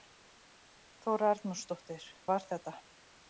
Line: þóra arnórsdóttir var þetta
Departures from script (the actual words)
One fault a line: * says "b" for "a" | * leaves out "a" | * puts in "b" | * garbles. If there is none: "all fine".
all fine